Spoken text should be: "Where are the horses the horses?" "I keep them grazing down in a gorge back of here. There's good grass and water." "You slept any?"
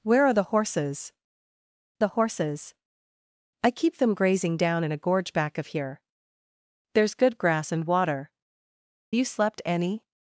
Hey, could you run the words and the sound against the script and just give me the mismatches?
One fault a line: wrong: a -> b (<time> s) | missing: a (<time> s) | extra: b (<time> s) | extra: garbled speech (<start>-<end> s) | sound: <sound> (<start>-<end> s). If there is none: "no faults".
no faults